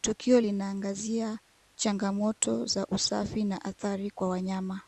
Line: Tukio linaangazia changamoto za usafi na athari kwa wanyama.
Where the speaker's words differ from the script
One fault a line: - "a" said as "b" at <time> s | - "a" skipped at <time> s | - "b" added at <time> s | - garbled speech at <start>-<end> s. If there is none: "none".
none